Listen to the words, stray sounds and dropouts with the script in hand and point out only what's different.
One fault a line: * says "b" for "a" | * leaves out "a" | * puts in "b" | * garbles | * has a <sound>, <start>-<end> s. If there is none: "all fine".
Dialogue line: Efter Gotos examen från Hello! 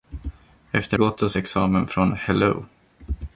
all fine